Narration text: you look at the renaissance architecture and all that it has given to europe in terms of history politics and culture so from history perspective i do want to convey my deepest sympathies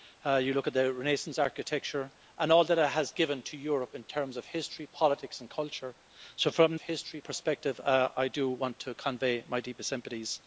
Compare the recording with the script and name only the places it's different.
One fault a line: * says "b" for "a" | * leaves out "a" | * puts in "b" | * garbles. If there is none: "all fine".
all fine